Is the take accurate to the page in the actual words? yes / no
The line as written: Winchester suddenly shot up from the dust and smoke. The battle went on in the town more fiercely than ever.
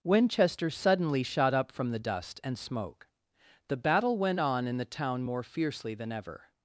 yes